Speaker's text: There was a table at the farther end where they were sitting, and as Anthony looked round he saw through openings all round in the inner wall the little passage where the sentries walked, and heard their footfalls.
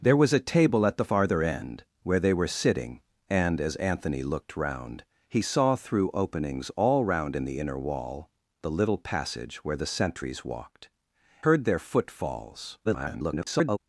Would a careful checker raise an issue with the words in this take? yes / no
yes